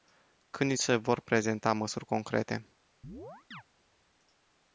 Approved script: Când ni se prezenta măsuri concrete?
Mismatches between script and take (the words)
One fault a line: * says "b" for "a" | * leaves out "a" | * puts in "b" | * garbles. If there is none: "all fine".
* puts in "vor"